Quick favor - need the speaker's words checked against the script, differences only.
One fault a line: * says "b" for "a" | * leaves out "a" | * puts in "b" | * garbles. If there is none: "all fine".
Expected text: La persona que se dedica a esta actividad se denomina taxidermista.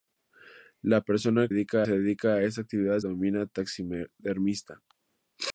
* says "dedica" for "que"
* leaves out "se"